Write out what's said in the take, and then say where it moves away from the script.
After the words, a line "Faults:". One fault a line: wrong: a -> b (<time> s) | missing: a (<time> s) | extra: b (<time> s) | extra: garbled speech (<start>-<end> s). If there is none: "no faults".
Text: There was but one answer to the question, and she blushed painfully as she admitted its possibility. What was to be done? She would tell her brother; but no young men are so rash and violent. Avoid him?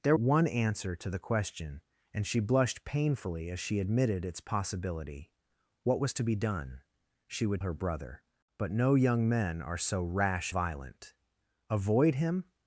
There one answer to the question, and she blushed painfully as she admitted its possibility. What was to be done? She would her brother; but no young men are so rash violent. Avoid him?
Faults:
missing: was but (0.1 s)
missing: tell (7.6 s)
missing: and (10.5 s)